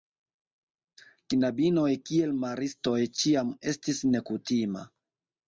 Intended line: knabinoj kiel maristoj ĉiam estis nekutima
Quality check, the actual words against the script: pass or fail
pass